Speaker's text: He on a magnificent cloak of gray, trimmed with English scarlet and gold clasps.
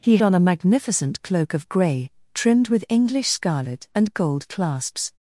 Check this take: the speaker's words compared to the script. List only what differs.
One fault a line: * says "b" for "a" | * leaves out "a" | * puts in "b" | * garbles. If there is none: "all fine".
all fine